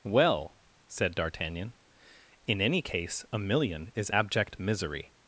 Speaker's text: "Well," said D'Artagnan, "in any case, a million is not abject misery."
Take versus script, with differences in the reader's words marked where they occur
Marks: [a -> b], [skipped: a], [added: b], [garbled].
"Well," said D'Artagnan, "in any case, a million is [skipped: not] abject misery."